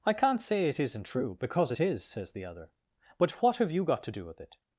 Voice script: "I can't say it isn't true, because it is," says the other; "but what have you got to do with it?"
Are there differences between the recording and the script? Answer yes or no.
no